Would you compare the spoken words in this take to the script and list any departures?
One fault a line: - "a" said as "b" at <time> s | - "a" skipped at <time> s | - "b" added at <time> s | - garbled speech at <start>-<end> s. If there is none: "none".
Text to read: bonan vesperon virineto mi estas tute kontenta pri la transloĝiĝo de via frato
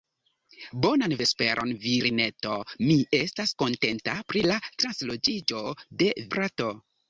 - "tute" skipped at 3.5 s
- "via" skipped at 6.1 s